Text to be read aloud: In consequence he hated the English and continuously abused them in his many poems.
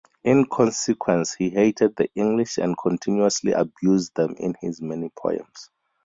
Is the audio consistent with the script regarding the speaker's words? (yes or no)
yes